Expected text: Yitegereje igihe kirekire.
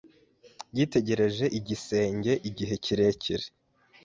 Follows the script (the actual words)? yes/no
no